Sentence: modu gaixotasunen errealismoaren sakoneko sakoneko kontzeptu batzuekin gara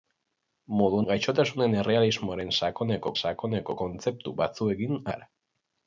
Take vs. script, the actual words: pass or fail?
pass